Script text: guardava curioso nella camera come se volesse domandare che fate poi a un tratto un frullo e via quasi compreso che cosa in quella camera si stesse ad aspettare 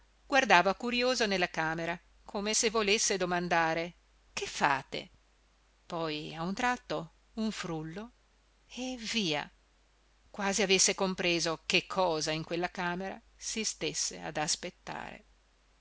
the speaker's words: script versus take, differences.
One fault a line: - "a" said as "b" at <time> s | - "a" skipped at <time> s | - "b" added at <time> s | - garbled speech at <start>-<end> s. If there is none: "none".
- "avesse" added at 10.6 s